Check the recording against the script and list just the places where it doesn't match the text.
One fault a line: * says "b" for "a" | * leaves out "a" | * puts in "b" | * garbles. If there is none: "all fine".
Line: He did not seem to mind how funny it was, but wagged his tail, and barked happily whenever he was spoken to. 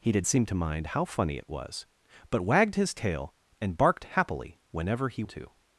* leaves out "not"
* leaves out "was spoken"